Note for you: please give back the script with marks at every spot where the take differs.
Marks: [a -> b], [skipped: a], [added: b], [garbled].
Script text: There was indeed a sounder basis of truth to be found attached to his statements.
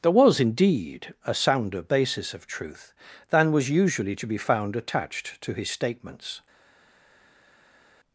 There was indeed a sounder basis of truth [added: than was usually] to be found attached to his statements.